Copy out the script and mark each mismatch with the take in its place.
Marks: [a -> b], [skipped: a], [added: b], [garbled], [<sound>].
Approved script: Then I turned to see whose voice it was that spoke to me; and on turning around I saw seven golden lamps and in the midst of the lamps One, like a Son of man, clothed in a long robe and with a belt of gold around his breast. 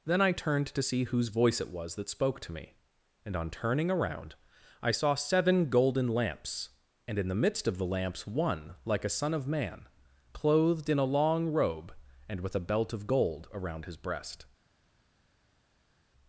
Then I turned to see whose voice it was that spoke to me; and on turning around I saw seven golden lamps and in the midst of the lamps One, like a Son of man, clothed in a long robe and with a belt of gold around his breast.